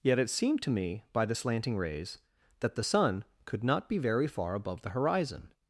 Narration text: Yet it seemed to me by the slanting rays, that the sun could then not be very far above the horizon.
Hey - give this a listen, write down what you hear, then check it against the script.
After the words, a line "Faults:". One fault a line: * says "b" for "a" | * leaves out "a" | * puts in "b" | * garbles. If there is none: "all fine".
Yet it seemed to me by the slanting rays, that the sun could not be very far above the horizon.
Faults:
* leaves out "then"